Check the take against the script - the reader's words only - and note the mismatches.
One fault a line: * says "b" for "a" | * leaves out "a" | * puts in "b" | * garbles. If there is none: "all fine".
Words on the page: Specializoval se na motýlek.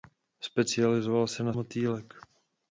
all fine